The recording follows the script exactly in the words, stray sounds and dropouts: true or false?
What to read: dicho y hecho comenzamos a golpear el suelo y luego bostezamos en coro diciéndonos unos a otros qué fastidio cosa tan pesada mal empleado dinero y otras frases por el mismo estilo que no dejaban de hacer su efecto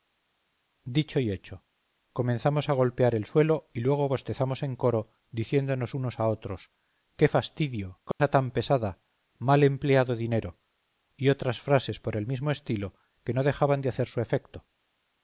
false